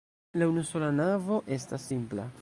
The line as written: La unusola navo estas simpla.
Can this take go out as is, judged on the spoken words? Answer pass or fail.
pass